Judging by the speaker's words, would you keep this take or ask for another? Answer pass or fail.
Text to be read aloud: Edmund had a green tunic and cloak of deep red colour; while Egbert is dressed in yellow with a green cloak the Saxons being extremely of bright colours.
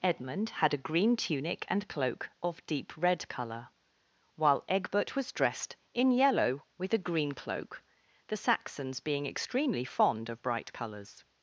fail